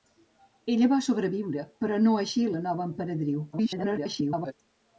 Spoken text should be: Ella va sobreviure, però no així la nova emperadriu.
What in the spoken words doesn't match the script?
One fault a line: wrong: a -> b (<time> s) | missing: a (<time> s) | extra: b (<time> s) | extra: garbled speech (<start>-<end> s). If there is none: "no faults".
extra: garbled speech (3.5-4.5 s)